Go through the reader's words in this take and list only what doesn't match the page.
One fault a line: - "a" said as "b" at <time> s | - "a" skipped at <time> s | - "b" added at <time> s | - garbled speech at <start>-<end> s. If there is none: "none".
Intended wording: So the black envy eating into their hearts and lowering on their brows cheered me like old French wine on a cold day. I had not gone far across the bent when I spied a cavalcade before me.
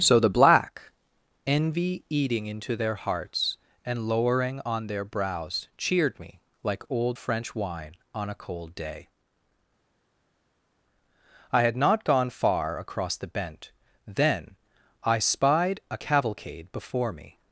- "when" said as "then" at 14.1 s